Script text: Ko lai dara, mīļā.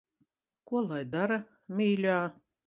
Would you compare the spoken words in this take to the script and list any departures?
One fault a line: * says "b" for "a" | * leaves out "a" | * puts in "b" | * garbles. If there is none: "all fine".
all fine